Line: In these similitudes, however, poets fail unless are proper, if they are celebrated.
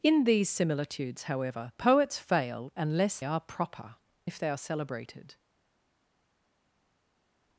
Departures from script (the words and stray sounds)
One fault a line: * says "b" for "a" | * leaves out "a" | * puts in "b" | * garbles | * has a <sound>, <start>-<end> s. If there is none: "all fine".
all fine